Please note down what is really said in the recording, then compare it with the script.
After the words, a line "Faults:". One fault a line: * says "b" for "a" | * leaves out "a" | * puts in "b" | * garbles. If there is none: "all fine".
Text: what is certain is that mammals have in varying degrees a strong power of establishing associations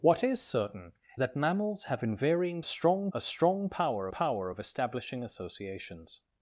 what is certain that mammals have in varying strong a strong power power of establishing associations
Faults:
* leaves out "is"
* says "strong" for "degrees"
* puts in "power"